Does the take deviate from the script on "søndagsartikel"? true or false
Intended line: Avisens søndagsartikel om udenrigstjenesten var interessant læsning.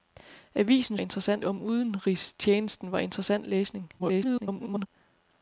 true